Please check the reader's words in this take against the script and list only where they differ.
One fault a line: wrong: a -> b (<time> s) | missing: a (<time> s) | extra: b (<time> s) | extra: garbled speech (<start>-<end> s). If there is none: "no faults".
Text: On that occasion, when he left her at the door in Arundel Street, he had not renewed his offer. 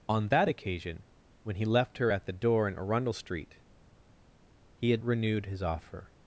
missing: not (5.0 s)